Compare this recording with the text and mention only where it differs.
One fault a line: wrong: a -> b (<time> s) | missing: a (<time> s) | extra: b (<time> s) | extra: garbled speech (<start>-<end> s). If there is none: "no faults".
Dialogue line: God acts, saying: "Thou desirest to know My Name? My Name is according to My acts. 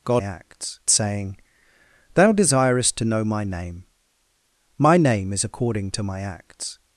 no faults